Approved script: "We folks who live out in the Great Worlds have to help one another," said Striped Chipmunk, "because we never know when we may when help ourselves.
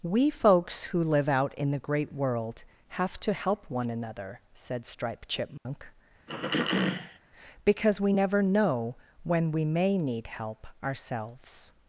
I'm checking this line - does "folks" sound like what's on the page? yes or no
yes